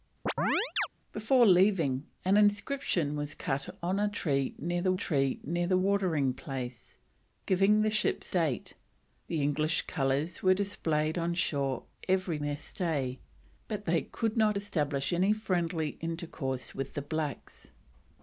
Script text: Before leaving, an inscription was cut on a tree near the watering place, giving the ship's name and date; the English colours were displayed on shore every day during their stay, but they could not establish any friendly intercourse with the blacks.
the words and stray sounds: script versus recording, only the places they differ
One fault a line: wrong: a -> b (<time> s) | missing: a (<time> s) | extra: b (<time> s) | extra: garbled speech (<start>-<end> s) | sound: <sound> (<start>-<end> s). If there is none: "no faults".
sound: chirp (0.3-0.9 s)
extra: tree near the (4.9 s)
missing: name and (8.4 s)
missing: day during (12.4 s)